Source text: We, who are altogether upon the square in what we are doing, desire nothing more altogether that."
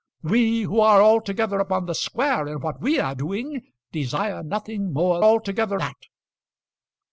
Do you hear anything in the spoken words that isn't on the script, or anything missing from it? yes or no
no